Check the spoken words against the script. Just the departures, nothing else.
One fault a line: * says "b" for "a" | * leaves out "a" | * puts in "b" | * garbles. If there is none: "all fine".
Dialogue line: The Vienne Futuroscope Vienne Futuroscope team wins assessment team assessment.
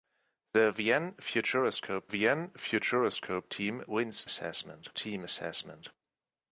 all fine